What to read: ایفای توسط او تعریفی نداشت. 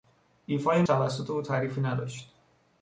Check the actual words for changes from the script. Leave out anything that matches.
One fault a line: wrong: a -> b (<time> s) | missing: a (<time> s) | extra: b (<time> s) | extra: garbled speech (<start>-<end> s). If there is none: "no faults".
no faults